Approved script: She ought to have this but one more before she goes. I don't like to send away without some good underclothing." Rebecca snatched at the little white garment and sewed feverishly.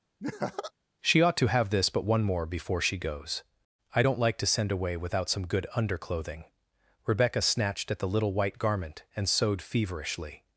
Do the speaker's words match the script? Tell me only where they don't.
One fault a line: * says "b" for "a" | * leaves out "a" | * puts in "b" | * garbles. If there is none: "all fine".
all fine